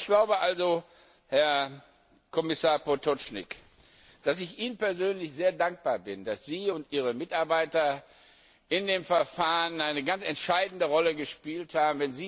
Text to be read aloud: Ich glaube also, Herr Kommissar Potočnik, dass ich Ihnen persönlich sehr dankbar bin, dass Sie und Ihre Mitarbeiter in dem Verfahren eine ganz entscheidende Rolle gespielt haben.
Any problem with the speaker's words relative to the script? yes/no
no